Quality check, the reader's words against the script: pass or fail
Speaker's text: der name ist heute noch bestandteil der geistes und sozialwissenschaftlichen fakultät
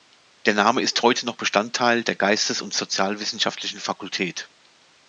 pass